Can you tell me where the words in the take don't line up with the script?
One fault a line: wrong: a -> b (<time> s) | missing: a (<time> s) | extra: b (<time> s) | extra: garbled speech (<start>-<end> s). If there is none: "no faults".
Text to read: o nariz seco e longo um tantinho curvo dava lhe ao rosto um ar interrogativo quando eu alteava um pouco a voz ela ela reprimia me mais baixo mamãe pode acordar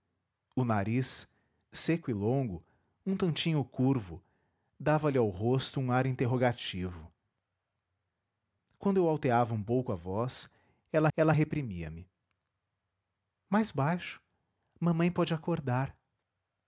no faults